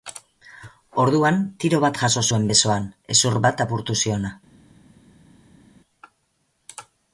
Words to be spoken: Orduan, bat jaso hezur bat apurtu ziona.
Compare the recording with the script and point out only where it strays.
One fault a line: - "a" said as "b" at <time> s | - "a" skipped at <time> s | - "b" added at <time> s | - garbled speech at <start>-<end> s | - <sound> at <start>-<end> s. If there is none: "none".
- "tiro" added at 1.6 s
- "zuen besoan" added at 2.3 s